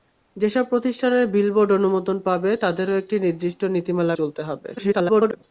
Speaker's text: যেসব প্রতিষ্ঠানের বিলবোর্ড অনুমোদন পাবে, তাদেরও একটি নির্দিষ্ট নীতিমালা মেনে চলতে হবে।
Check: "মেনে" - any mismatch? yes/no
yes